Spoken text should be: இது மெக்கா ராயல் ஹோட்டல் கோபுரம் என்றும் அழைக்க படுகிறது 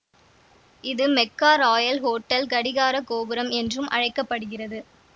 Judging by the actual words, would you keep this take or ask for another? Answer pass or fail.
fail